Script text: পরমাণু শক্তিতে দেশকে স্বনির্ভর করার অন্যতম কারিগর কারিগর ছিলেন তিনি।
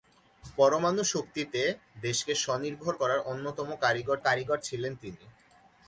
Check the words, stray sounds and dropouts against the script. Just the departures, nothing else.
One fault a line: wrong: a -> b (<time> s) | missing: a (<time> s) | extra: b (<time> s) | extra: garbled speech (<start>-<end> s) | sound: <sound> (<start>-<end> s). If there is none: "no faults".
no faults